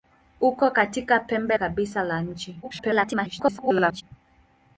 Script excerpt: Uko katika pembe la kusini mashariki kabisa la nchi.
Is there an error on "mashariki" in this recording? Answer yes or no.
yes